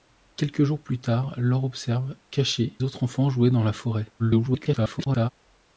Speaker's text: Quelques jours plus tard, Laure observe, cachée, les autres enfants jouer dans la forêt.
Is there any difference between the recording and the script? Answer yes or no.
yes